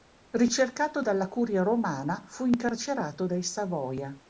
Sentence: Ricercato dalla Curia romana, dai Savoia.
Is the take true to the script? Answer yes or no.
no